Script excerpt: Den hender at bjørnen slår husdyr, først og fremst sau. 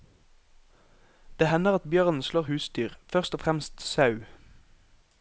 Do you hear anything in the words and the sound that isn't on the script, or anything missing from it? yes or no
yes